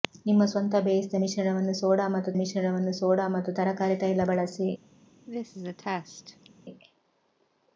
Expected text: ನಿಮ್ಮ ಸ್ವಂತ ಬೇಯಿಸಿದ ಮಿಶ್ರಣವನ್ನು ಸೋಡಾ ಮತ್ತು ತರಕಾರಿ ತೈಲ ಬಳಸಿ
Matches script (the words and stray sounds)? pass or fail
fail